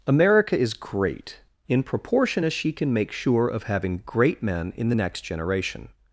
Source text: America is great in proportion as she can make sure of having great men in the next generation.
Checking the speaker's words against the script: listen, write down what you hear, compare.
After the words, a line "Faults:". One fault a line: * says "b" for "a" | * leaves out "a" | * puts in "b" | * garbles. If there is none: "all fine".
America is great in proportion as she can make sure of having great men in the next generation.
Faults:
all fine